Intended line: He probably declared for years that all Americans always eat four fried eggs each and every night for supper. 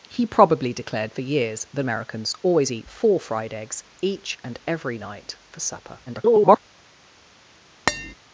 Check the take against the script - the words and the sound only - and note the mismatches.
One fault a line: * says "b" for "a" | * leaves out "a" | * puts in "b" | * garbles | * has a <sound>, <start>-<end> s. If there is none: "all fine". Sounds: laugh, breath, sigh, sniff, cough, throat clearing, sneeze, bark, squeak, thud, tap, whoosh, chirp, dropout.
* leaves out "all"
* garbles
* has a tap, 7.9-8.1 s